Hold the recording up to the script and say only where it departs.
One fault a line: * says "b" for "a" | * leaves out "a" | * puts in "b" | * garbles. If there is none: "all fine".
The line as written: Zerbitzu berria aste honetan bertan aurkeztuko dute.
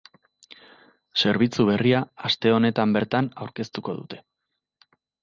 all fine